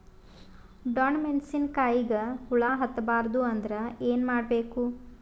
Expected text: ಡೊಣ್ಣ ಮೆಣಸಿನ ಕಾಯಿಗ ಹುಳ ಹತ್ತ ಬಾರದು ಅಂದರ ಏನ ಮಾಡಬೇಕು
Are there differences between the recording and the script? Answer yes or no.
no